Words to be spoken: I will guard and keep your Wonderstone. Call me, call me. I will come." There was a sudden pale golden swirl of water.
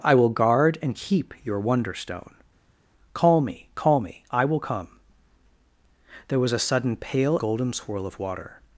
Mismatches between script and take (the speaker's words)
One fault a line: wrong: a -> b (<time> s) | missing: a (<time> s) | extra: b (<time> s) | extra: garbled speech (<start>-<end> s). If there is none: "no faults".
no faults